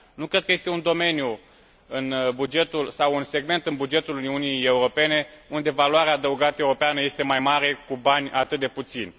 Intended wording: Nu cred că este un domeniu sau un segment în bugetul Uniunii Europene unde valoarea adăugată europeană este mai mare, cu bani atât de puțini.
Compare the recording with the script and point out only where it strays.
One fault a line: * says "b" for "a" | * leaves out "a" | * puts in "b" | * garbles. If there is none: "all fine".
all fine